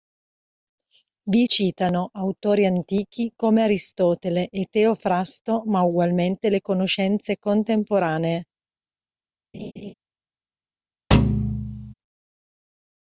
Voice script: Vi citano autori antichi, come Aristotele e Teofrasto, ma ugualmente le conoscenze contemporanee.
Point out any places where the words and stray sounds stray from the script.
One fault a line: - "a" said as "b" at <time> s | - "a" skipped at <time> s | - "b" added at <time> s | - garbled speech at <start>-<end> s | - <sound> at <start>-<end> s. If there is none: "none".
- laugh at 9.5-9.9 s
- thud at 11.1-11.9 s